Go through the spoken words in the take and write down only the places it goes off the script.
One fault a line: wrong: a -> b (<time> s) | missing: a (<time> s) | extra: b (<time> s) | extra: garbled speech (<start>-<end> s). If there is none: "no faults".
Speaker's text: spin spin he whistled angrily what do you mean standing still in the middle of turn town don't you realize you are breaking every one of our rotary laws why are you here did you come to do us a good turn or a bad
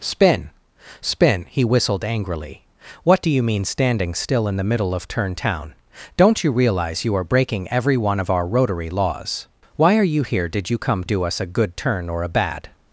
missing: to (11.0 s)